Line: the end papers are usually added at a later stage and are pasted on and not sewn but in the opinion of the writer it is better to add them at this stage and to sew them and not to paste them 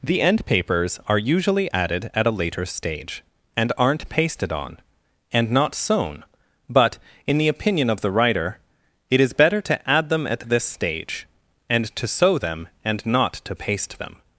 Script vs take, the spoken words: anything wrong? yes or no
yes